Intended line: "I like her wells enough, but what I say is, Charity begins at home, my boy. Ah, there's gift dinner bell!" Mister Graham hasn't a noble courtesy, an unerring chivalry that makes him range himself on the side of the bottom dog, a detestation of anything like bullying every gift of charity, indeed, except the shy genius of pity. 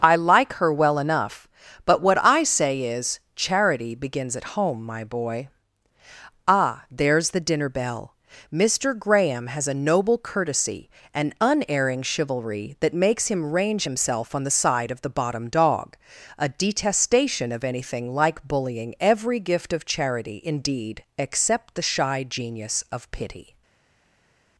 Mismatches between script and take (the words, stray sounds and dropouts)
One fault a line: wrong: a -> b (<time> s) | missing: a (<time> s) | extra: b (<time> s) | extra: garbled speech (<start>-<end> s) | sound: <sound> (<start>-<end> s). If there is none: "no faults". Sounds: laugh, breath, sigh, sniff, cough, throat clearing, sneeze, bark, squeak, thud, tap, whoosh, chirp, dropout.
wrong: wells -> well (0.7 s)
wrong: gift -> the (7.3 s)
wrong: hasn't -> has (9.5 s)